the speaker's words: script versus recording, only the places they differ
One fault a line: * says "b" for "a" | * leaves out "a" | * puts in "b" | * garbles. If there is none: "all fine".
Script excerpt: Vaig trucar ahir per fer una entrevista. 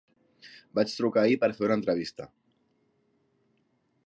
all fine